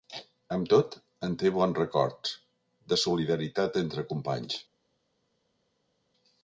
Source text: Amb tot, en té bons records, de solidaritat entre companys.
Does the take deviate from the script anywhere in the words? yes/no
no